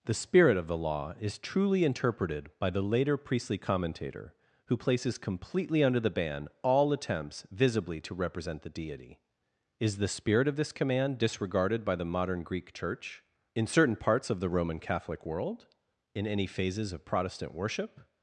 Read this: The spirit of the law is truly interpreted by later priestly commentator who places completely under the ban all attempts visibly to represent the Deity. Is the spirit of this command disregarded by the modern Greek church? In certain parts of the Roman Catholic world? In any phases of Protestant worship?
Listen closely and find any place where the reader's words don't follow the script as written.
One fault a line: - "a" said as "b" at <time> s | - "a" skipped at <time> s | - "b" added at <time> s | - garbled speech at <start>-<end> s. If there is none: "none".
- "the" added at 2.7 s